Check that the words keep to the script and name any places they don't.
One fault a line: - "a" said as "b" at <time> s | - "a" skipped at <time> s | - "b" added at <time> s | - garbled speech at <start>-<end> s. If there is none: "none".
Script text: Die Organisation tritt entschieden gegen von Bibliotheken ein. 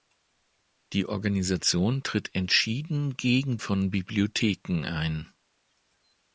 none